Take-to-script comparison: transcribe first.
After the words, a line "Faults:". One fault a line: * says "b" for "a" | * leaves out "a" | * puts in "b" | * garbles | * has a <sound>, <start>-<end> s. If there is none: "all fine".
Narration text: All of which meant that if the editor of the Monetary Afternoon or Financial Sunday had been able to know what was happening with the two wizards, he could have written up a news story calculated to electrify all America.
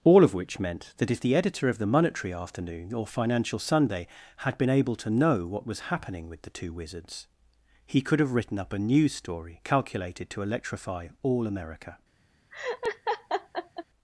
All of which meant that if the editor of the Monetary Afternoon or Financial Sunday had been able to know what was happening with the two wizards, he could have written up a news story calculated to electrify all America.
Faults:
* has a laugh, 12.5-13.8 s